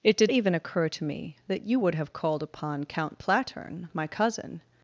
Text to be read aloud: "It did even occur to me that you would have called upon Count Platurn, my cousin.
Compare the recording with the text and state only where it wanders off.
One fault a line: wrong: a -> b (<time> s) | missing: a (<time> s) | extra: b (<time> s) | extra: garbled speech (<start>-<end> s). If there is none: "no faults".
no faults